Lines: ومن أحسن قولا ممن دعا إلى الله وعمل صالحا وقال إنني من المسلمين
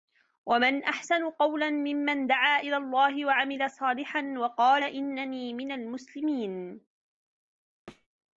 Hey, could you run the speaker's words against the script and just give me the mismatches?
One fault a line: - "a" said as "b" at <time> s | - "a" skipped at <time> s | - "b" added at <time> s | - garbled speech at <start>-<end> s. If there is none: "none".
none